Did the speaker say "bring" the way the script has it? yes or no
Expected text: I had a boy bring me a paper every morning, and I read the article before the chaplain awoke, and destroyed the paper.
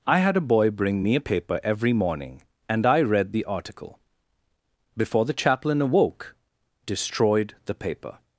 yes